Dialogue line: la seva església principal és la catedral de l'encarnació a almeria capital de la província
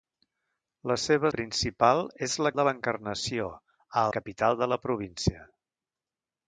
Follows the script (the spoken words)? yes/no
no